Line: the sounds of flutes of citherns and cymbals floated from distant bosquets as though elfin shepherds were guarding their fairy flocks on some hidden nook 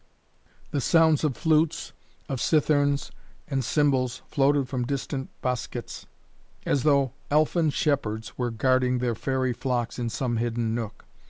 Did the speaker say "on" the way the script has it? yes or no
no